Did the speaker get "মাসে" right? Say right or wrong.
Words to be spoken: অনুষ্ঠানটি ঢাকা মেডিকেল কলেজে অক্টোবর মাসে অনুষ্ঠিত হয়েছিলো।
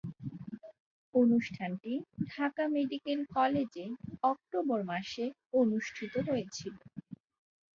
right